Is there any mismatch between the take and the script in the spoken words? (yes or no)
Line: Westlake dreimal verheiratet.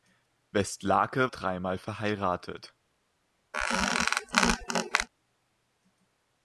no